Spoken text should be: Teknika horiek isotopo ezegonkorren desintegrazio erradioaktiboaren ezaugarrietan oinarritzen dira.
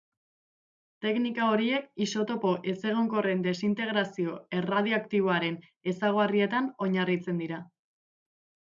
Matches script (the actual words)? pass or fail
pass